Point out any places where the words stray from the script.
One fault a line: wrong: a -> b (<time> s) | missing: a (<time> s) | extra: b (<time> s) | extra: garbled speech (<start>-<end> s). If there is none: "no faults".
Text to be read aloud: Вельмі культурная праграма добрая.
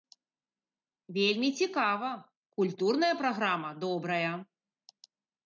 extra: цікава (1.6 s)